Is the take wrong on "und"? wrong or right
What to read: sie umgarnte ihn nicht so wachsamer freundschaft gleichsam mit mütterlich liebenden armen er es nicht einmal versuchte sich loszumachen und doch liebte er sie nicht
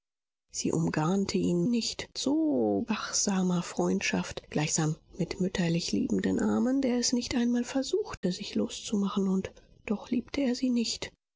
right